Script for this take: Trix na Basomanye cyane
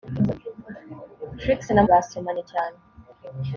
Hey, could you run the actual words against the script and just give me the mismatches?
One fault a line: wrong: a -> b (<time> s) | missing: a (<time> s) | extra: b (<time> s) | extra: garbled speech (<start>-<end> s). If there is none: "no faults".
no faults